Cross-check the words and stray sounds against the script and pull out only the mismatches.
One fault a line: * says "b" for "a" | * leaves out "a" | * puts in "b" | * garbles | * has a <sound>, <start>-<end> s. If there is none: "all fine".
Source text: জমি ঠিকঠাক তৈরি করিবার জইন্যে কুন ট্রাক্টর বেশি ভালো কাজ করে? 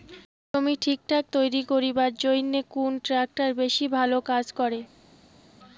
all fine